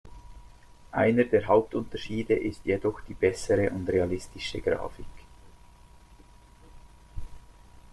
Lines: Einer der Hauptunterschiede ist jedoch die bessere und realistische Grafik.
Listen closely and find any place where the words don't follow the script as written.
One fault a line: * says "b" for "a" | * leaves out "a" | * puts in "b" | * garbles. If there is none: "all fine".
all fine